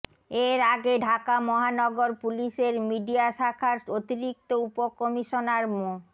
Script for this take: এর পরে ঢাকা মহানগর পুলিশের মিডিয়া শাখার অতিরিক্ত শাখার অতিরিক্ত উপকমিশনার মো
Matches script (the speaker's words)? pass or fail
fail